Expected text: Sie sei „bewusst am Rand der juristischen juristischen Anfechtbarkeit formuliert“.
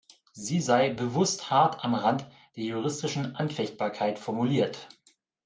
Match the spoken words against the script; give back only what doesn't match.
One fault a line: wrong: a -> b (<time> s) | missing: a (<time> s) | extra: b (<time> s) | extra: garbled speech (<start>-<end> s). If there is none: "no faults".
extra: hart (1.5 s)
missing: juristischen (3.3 s)